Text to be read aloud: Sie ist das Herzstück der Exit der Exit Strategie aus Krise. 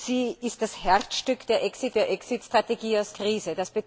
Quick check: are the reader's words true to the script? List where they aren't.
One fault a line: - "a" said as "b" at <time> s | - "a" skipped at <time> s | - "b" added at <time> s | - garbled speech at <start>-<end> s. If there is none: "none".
none